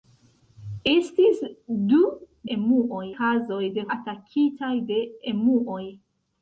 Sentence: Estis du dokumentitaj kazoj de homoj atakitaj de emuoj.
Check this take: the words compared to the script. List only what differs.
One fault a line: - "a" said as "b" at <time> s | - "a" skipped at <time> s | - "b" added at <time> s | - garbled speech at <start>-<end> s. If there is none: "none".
- "dokumentitaj" said as "emuoj" at 2.6 s
- "homoj" skipped at 3.9 s